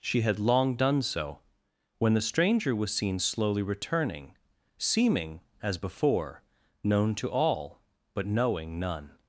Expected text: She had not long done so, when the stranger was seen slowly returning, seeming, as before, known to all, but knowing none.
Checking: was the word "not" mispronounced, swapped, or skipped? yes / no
yes